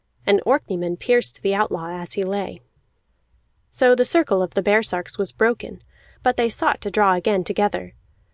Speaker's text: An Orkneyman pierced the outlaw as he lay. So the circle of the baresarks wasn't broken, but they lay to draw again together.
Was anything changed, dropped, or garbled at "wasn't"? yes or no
yes